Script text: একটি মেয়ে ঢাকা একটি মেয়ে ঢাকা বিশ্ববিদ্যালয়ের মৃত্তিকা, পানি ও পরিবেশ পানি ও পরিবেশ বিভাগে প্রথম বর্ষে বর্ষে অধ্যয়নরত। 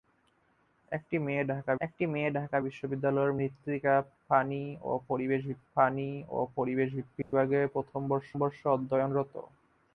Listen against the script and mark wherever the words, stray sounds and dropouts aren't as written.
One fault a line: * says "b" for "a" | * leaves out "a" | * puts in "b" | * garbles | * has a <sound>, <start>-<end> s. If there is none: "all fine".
* has a dropout, 7.2-7.3 s